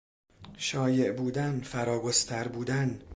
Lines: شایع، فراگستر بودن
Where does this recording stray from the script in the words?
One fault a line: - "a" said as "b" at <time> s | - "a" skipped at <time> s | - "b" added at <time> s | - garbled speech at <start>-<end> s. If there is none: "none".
- "بودن" added at 1.1 s